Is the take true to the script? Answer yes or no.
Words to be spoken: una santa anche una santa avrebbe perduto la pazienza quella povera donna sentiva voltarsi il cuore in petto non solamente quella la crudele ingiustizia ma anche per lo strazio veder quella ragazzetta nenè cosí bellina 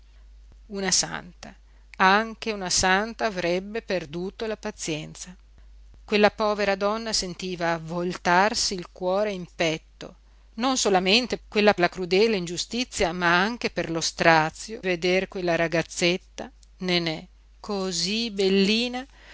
yes